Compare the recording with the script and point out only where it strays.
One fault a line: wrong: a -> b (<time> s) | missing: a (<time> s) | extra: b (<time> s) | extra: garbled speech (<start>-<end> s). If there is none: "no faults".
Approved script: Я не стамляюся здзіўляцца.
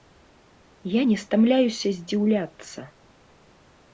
no faults